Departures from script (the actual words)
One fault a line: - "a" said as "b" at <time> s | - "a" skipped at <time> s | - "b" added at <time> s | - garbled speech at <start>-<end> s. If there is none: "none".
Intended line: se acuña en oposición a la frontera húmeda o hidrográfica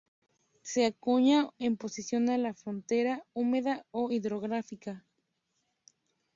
none